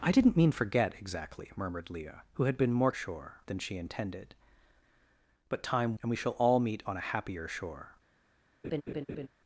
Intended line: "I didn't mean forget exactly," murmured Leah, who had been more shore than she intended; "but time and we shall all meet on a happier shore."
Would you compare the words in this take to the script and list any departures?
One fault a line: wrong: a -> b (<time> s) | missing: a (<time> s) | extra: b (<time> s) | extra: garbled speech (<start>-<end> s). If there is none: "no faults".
no faults